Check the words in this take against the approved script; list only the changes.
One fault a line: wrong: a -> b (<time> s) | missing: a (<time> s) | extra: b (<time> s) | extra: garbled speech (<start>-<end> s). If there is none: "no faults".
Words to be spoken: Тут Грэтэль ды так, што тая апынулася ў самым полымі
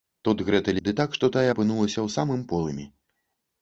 no faults